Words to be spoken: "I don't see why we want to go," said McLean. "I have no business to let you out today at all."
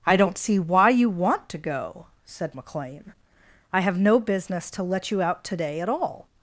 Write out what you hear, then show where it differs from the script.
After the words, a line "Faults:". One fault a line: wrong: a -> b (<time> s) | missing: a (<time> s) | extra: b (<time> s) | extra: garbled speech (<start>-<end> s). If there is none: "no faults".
"I don't see why you want to go," said McLean. "I have no business to let you out today at all."
Faults:
wrong: we -> you (0.9 s)